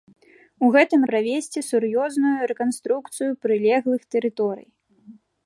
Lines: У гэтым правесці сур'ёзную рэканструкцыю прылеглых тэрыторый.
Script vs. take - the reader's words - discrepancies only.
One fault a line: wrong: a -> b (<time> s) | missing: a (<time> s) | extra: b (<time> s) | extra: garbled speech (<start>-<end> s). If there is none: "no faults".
no faults